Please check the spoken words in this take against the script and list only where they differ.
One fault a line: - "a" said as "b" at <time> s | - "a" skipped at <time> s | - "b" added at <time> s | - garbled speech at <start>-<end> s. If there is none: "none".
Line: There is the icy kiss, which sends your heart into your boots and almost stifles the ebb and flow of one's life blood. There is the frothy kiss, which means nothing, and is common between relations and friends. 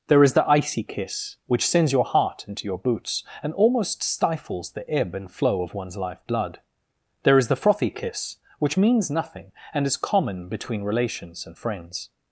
none